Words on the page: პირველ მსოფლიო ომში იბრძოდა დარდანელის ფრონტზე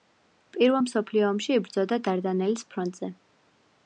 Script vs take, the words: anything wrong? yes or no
no